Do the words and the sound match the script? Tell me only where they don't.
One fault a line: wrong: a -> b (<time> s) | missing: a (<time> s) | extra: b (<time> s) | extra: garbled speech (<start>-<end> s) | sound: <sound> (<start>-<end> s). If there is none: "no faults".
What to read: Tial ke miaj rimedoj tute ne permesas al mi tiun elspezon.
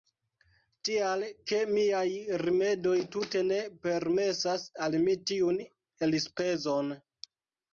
no faults